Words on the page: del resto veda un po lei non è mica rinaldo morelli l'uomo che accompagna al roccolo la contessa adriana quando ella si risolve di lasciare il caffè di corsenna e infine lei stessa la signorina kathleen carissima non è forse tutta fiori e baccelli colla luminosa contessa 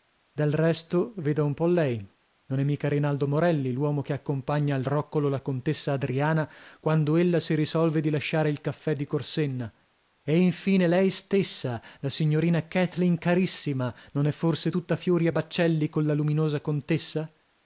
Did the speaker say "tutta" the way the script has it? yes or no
yes